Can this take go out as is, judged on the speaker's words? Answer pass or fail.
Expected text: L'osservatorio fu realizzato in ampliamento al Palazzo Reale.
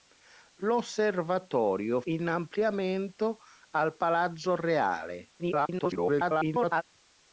fail